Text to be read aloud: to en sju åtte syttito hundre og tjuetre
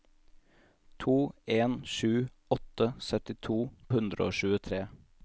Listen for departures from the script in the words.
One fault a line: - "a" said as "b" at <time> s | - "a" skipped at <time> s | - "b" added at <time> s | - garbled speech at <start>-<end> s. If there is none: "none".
none